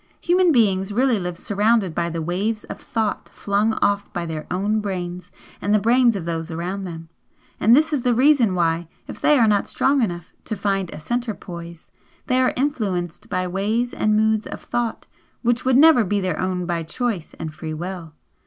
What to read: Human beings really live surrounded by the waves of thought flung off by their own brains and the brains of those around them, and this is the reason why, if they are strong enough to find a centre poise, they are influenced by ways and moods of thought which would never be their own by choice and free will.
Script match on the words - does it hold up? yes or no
no